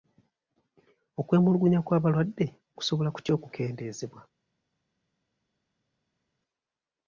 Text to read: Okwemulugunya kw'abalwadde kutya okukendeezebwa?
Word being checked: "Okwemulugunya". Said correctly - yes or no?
yes